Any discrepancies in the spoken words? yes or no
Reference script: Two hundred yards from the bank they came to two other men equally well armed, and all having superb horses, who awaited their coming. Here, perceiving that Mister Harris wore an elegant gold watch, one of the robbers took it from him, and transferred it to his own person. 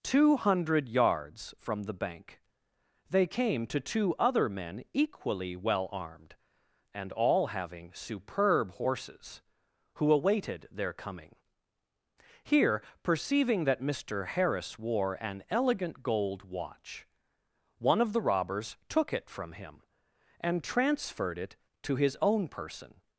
no